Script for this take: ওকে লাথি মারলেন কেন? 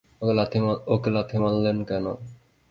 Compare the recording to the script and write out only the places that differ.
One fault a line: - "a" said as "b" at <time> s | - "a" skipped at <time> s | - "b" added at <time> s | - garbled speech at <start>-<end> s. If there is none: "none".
none